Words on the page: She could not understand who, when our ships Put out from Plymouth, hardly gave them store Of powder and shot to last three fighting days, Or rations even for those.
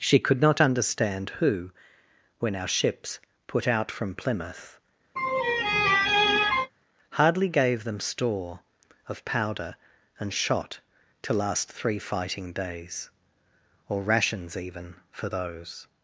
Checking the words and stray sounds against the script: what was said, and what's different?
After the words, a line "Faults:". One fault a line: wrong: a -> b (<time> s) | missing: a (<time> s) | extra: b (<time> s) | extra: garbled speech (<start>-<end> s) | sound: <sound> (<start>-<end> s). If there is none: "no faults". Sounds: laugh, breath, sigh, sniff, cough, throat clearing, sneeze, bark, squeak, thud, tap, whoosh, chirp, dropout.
She could not understand who, when our ships Put out from Plymouth, hardly gave them store Of powder and shot to last three fighting days, Or rations even for those.
Faults:
sound: laugh (5.2-6.7 s)